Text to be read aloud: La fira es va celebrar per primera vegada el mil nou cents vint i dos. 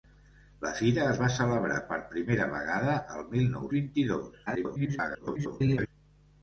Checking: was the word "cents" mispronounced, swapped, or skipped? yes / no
yes